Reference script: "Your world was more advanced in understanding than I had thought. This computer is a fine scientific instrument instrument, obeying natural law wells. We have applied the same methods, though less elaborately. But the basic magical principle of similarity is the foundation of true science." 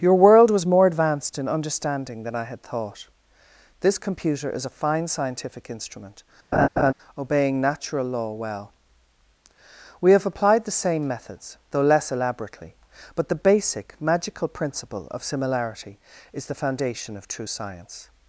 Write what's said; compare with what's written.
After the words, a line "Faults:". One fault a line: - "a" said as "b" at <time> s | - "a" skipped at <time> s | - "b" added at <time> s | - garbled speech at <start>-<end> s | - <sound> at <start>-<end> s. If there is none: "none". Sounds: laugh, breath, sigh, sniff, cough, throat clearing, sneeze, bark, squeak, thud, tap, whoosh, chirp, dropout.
"Your world was more advanced in understanding than I had thought. This computer is a fine scientific instrument, obeying natural law well. We have applied the same methods, though less elaborately. But the basic magical principle of similarity is the foundation of true science."
Faults:
- "instrument" skipped at 6.2 s
- laugh at 6.5-6.9 s
- "wells" said as "well" at 8.3 s